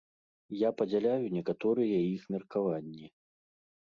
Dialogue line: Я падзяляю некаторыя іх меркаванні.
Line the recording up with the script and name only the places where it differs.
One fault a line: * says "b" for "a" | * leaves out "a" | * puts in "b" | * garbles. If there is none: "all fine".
all fine